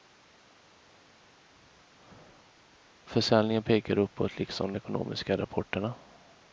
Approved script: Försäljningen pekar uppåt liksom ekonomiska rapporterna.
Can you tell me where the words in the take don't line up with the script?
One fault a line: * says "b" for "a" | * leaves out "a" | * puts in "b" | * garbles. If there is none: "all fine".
all fine